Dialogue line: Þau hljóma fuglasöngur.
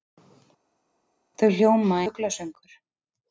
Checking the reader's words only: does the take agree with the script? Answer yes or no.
yes